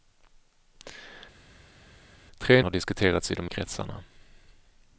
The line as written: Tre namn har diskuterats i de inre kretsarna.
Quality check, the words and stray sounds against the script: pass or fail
fail